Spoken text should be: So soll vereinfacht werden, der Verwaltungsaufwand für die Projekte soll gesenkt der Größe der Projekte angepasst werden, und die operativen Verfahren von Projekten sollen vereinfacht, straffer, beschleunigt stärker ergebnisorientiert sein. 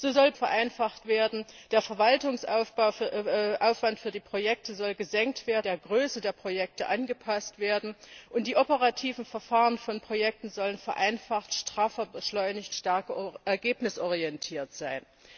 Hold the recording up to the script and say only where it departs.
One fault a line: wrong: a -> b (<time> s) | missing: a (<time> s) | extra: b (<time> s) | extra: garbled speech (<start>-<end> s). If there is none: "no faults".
no faults